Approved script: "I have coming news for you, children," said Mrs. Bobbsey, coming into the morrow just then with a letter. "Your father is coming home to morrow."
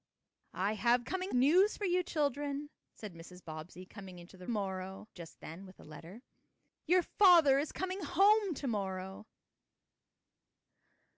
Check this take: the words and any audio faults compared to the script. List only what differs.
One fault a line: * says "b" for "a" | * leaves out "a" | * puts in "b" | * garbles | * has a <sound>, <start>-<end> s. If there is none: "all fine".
all fine